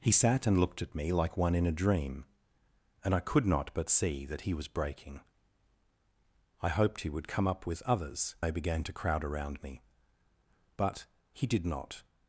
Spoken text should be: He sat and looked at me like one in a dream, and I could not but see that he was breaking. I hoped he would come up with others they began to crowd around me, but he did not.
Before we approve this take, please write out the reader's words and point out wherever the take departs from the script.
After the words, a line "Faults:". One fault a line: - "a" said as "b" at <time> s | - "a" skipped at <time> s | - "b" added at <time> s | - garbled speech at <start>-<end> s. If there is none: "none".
He sat and looked at me like one in a dream, and I could not but see that he was breaking. I hoped he would come up with others they began to crowd around me, but he did not.
Faults:
none